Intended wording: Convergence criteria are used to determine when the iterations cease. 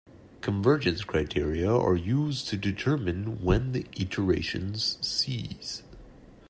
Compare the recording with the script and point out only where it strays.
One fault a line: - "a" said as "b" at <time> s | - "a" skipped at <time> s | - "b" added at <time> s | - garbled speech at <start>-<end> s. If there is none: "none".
none